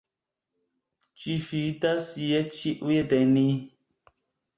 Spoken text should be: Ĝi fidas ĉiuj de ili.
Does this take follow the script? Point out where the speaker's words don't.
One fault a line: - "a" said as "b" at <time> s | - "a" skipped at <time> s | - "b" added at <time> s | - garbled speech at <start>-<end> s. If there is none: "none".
- "je" added at 2.3 s
- "ili" said as "ni" at 3.3 s